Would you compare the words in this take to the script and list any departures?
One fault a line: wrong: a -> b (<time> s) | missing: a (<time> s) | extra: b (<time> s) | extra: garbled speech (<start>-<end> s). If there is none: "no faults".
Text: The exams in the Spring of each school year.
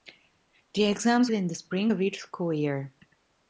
no faults